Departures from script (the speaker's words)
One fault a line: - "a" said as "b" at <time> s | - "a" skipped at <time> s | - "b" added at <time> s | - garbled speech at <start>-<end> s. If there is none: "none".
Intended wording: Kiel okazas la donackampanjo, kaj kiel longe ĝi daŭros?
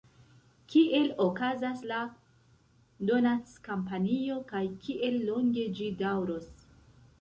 none